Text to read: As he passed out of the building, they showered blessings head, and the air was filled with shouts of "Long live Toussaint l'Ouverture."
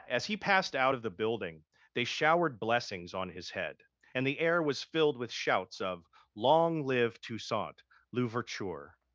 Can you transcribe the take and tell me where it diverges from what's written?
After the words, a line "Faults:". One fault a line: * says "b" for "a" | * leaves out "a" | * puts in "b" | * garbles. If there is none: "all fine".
As he passed out of the building, they showered blessings on his head, and the air was filled with shouts of "Long live Toussaint l'Ouverture."
Faults:
* puts in "on his"